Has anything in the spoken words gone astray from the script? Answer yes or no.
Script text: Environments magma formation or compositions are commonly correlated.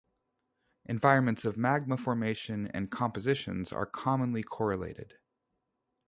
yes